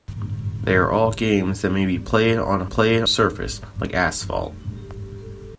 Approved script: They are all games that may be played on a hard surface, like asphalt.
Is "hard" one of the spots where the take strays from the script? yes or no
yes